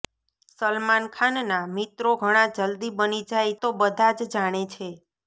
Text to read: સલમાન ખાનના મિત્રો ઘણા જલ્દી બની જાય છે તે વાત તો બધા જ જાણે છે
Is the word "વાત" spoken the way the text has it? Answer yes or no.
no